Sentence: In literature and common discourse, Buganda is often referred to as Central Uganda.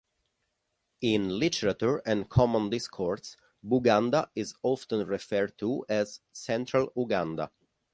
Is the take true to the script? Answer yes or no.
yes